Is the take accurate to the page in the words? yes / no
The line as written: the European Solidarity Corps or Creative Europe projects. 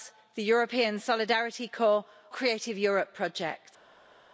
no